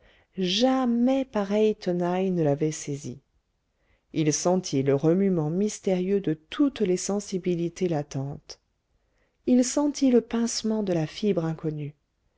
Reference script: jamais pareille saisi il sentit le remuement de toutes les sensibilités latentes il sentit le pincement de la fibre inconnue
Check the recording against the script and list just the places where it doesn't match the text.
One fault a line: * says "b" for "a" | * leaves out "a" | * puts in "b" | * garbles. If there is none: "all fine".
* puts in "tenaille ne l'avait"
* puts in "mystérieux"